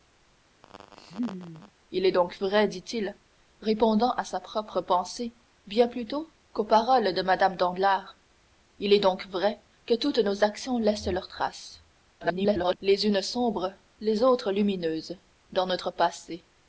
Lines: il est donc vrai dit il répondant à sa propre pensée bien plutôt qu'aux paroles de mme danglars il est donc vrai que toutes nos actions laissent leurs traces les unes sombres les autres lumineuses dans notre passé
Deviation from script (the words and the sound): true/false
true